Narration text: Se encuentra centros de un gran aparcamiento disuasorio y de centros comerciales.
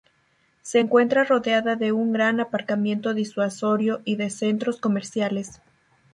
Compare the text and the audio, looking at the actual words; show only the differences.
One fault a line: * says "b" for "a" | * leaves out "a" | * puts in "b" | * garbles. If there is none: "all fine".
* says "rodeada" for "centros"